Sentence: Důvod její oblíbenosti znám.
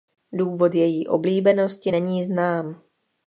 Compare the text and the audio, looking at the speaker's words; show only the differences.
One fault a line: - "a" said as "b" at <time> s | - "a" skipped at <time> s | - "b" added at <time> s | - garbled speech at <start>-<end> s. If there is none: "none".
- "není" added at 1.9 s